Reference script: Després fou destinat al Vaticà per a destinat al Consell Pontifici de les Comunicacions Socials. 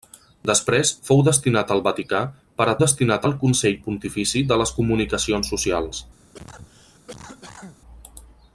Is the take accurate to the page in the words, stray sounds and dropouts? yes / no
no